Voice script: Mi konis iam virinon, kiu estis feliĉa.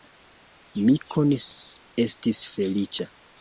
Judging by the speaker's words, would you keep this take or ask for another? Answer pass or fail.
fail